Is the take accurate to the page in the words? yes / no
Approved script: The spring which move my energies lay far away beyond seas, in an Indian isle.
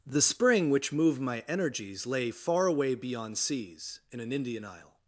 no